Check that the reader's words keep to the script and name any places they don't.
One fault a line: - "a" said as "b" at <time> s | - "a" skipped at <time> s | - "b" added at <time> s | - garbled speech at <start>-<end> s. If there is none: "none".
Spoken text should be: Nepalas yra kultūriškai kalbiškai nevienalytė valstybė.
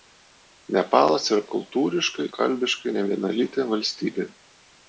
none